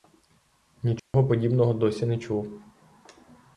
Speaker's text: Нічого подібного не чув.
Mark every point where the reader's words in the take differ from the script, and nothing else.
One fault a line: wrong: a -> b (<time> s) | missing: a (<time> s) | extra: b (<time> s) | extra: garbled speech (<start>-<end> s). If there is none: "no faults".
extra: досі (1.7 s)